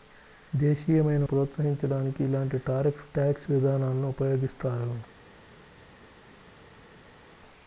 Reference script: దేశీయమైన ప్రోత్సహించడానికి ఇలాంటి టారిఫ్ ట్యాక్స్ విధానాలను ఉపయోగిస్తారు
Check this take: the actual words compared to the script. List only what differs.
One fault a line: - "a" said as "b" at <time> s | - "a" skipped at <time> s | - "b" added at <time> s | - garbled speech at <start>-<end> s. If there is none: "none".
none